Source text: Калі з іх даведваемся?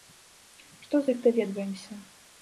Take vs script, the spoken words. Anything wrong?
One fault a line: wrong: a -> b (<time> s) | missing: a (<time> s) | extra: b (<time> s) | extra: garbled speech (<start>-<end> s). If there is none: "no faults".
wrong: Калі -> Што (0.8 s)